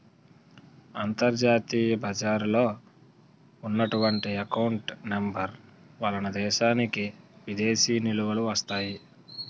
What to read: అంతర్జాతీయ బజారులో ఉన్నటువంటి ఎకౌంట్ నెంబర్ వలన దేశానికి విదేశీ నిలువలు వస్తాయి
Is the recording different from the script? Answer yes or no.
no